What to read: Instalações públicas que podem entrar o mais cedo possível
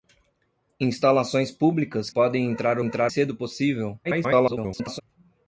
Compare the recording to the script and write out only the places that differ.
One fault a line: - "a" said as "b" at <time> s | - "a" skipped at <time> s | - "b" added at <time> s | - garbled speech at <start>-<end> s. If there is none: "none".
- "que" skipped at 2.1 s
- "mais" said as "entrar" at 2.8 s
- garbled speech at 4.0-5.0 s